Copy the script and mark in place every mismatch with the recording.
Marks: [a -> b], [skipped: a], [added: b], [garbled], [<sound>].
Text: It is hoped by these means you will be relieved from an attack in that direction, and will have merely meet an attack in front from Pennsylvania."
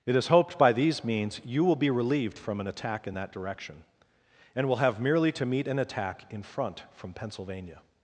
It is hoped by these means you will be relieved from an attack in that direction, and will have merely [added: to] meet an attack in front from Pennsylvania."